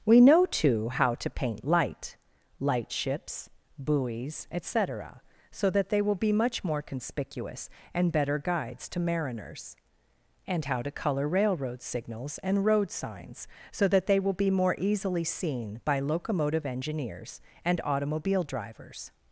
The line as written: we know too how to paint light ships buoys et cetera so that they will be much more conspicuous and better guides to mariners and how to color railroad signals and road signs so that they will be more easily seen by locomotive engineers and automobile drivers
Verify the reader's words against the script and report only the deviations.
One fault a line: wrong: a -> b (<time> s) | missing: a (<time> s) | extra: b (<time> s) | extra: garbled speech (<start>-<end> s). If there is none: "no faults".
extra: light (2.6 s)